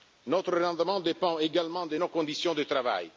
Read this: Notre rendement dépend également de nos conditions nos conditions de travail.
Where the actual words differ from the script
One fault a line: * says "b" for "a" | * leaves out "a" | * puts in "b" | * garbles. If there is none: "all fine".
* leaves out "nos conditions"